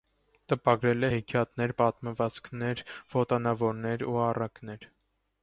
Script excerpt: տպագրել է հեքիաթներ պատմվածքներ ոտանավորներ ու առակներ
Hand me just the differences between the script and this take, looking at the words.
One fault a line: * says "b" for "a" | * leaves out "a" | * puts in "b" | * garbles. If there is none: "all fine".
all fine